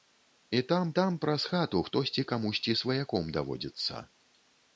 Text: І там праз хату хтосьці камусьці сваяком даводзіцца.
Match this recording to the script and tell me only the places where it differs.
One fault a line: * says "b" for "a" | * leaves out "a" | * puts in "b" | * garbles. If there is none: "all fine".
* puts in "там"